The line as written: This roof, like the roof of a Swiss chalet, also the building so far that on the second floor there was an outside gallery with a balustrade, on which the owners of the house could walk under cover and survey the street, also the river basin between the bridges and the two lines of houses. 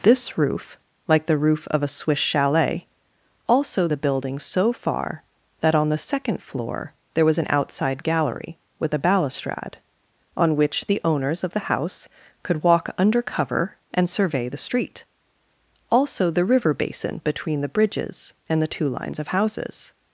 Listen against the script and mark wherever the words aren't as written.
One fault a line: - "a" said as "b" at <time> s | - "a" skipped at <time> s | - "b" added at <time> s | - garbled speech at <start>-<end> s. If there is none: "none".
none